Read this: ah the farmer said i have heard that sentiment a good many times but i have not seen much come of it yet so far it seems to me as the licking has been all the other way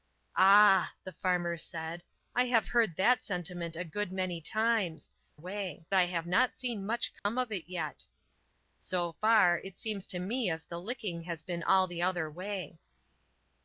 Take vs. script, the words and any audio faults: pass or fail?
fail